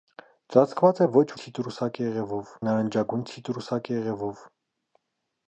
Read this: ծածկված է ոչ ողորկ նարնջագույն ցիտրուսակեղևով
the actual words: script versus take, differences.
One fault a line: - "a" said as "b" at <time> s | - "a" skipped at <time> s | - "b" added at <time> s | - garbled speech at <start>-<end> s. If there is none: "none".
- "ողորկ" said as "ցիտրուսակեղևով" at 1.4 s